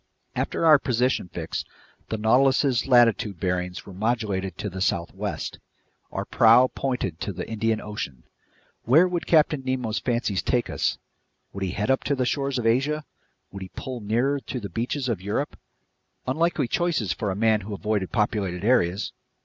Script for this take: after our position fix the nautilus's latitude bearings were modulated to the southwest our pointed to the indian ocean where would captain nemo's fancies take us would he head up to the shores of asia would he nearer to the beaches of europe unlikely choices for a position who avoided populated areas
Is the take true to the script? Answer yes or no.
no